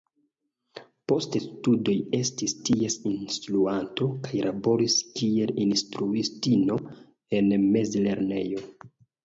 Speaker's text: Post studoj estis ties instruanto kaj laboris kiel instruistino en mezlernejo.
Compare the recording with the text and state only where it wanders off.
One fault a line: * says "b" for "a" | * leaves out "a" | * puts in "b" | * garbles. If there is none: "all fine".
all fine